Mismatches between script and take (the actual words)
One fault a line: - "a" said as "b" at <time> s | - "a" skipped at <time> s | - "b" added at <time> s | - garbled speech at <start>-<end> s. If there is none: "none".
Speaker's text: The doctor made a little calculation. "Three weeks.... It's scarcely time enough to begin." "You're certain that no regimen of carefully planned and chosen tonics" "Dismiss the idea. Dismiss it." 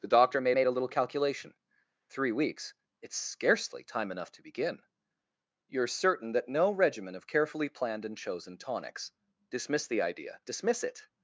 - "made" added at 0.5 s